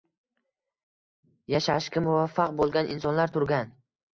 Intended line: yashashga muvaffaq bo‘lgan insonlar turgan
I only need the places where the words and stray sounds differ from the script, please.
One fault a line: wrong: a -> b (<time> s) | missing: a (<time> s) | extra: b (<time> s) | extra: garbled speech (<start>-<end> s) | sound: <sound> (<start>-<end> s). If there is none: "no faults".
no faults